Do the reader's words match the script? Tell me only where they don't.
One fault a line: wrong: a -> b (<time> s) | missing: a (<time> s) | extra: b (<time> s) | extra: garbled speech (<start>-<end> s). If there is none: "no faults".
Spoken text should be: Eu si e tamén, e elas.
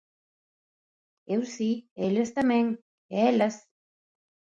extra: eles (2.1 s)